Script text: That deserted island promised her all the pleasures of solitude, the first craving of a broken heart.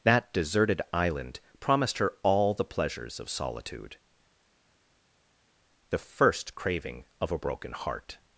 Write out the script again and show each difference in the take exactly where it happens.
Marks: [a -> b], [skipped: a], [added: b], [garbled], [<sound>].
That deserted island promised her all the pleasures of solitude, the first craving of a broken heart.